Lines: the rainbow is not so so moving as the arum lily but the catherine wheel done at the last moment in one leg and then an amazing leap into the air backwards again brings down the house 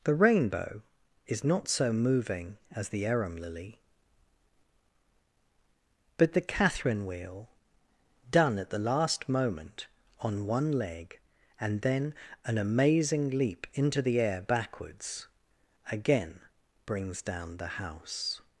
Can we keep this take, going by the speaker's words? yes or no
no